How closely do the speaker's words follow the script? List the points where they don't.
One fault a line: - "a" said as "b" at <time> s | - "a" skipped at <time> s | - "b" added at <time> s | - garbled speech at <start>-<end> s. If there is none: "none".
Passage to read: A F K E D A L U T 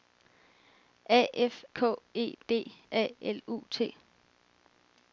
none